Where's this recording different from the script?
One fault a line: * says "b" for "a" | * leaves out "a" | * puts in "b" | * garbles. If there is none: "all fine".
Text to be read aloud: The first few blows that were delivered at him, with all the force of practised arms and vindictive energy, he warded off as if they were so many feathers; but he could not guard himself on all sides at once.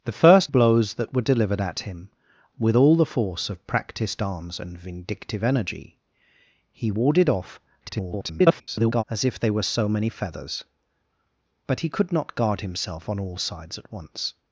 * leaves out "few"
* garbles